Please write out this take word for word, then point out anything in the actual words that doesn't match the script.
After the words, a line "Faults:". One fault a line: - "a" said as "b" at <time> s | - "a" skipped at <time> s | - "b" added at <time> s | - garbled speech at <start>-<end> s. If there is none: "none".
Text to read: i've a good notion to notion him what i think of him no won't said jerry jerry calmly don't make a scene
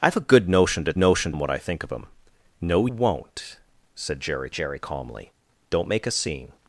i've a good notion to notion him what i think of him no won't said jerry jerry calmly don't make a scene
Faults:
none